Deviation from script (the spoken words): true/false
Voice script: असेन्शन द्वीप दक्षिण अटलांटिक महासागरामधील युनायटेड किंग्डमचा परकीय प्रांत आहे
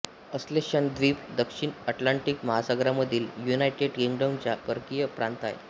false